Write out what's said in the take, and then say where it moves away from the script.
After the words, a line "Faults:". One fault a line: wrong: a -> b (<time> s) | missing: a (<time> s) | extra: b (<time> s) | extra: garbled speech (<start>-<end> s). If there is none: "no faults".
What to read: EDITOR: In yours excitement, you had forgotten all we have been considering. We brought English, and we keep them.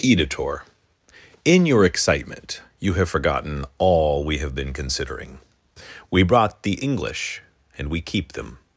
EDITOR: In your excitement, you have forgotten all we have been considering. We brought the English, and we keep them.
Faults:
wrong: yours -> your (1.7 s)
wrong: had -> have (2.9 s)
extra: the (6.6 s)